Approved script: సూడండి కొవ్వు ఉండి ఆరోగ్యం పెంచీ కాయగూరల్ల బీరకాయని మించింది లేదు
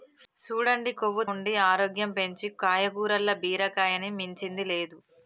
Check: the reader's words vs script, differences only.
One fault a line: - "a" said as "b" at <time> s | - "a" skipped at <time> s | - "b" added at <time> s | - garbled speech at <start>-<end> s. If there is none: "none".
none